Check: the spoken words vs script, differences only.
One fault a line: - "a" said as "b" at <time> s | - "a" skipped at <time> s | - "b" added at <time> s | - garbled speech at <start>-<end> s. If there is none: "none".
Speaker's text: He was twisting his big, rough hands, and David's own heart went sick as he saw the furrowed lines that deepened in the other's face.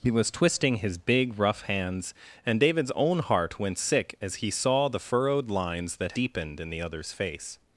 none